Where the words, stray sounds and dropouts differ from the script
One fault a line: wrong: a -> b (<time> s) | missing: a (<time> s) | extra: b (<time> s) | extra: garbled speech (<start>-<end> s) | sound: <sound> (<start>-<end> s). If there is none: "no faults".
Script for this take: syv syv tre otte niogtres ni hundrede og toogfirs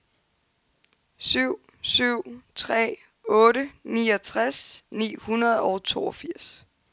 no faults